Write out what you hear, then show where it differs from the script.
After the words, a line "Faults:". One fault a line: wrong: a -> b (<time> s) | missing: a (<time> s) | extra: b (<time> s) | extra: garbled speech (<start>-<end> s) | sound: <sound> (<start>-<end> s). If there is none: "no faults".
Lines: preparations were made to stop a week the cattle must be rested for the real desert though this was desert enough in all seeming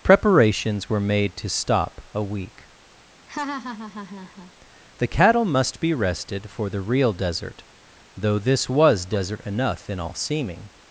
preparations were made to stop a week the cattle must be rested for the real desert though this was desert enough in all seeming
Faults:
sound: laugh (3.3-4.5 s)